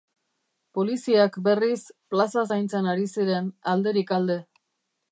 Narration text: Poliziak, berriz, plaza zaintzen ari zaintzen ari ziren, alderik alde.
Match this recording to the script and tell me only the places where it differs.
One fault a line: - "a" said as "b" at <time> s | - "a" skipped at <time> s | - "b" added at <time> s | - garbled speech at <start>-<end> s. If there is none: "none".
- "zaintzen ari" skipped at 3.1 s